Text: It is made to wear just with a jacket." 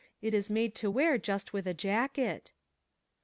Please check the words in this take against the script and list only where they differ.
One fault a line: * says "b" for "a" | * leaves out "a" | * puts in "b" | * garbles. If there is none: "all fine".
all fine